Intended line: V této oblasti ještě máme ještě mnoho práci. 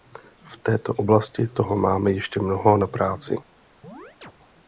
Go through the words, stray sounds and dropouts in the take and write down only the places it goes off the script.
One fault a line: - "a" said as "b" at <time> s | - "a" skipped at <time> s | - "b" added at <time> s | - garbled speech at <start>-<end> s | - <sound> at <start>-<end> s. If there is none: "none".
- "ještě" said as "toho" at 1.5 s
- "na" added at 2.8 s
- chirp at 3.8-4.3 s